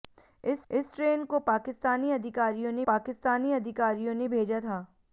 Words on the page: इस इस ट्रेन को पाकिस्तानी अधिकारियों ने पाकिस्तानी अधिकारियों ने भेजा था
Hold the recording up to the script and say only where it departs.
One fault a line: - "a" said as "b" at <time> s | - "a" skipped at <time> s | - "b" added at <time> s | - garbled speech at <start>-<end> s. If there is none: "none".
none